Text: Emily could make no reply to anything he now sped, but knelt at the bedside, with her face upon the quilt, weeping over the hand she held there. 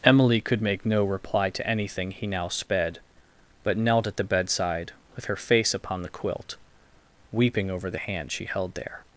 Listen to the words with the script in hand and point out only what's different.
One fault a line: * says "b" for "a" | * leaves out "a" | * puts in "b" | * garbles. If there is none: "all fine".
all fine